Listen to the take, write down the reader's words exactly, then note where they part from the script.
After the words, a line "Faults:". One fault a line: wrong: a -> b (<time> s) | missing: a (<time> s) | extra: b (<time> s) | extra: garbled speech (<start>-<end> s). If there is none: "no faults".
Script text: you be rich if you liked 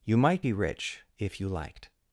you might be rich if you liked
Faults:
extra: might (0.2 s)